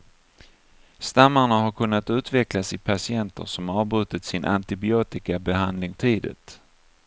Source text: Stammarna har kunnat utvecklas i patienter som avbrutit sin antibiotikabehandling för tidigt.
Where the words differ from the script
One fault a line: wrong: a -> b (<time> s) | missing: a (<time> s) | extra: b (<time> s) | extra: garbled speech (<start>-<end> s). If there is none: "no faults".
missing: för (5.9 s)